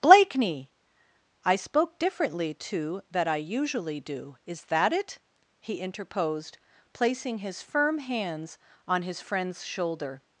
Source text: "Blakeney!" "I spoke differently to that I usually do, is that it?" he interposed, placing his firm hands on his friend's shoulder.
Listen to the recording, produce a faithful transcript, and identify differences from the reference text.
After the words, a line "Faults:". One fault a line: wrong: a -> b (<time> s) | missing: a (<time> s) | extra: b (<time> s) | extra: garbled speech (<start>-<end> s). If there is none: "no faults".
"Blakeney!" "I spoke differently to that I usually do, is that it?" he interposed, placing his firm hands on his friend's shoulder.
Faults:
no faults